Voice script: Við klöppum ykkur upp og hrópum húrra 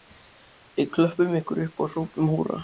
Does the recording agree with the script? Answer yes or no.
yes